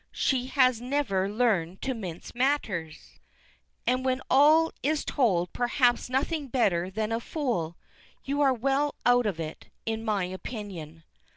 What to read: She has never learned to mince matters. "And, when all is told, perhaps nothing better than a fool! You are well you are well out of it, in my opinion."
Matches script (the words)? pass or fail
fail